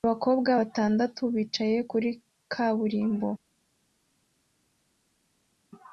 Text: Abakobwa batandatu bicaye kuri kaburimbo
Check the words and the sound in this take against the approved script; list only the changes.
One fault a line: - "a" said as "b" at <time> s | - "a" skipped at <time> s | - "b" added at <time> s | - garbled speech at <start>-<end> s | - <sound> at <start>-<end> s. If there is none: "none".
none